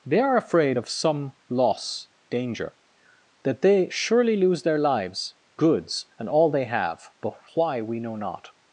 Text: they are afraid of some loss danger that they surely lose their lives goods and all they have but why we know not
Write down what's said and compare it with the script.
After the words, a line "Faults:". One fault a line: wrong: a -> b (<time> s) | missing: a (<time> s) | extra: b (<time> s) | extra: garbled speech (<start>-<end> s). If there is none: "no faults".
they are afraid of some loss danger that they surely lose their lives goods and all they have but why we know not
Faults:
no faults